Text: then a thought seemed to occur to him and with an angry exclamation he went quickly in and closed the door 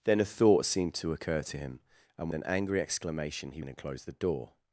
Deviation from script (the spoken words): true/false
true